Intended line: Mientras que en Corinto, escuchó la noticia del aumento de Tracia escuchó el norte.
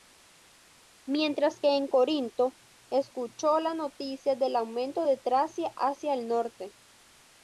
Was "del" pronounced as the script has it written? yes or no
yes